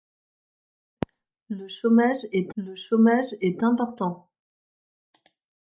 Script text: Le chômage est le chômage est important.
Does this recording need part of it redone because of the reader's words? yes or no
no